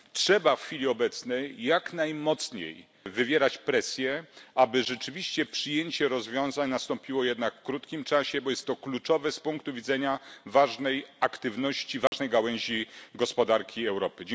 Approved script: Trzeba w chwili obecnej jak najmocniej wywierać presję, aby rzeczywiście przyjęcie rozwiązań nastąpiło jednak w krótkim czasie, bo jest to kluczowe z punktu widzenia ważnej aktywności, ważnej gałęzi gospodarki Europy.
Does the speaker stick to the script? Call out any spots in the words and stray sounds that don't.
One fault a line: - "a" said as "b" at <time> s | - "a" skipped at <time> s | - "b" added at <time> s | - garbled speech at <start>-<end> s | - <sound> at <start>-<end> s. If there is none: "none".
- dropout at 12.1-12.1 s